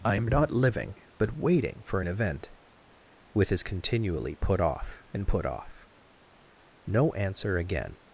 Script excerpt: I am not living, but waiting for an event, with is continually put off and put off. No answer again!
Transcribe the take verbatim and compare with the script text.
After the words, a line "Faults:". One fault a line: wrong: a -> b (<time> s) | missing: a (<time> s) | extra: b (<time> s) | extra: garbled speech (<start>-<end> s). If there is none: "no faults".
I am not living, but waiting for an event, with is continually put off and put off. No answer again!
Faults:
no faults